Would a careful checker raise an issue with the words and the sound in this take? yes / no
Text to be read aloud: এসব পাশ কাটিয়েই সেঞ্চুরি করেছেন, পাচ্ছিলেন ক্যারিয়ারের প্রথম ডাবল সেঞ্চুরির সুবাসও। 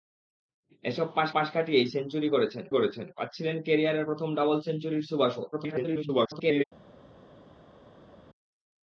yes